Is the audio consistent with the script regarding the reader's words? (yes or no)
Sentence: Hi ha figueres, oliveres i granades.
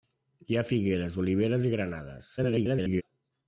no